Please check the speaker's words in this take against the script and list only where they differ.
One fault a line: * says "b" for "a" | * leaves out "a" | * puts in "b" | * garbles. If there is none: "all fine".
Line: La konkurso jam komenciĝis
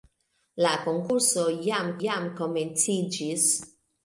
* puts in "jam"